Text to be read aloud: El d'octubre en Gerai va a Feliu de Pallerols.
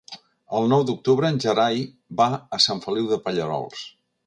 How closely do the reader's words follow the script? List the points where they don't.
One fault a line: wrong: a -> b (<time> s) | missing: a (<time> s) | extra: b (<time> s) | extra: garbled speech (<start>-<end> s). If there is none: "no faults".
extra: nou (0.7 s)
extra: Sant (2.7 s)